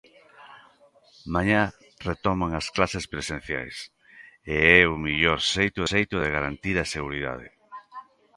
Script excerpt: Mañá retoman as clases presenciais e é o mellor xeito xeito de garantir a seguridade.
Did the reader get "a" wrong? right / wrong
right